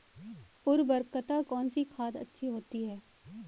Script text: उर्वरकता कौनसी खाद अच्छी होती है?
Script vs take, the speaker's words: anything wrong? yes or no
no